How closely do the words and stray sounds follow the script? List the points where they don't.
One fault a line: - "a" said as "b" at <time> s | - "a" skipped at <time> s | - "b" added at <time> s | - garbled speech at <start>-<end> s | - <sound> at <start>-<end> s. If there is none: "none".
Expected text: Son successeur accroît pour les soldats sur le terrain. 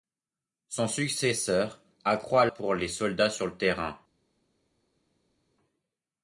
none